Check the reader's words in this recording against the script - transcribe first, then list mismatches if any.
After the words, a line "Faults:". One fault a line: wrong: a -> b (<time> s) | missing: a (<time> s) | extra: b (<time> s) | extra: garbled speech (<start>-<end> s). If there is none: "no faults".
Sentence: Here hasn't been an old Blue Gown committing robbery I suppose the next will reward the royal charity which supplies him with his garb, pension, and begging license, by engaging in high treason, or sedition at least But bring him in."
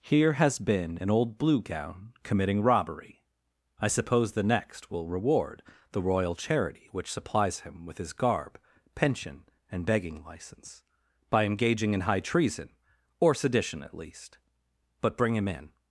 Here has been an old Blue Gown committing robbery I suppose the next will reward the royal charity which supplies him with his garb, pension, and begging license, by engaging in high treason, or sedition at least But bring him in."
Faults:
wrong: hasn't -> has (0.3 s)